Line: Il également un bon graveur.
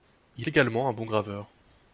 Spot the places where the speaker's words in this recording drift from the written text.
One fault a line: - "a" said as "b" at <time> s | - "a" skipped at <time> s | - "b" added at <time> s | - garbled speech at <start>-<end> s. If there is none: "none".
none